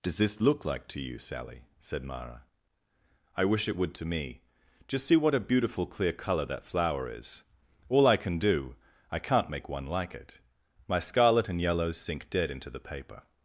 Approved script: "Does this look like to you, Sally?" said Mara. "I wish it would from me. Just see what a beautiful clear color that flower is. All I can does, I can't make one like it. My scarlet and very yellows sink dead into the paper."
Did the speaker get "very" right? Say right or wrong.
wrong